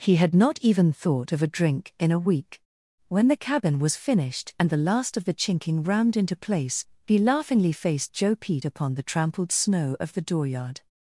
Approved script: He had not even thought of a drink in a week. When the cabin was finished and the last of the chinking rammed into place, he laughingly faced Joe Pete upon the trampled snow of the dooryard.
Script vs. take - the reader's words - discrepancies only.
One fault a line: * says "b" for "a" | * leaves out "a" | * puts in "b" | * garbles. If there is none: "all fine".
all fine